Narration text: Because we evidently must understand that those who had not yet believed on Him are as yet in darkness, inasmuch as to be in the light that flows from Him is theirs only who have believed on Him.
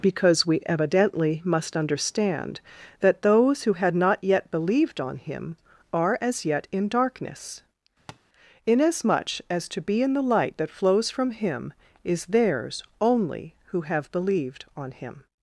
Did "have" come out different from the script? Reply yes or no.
no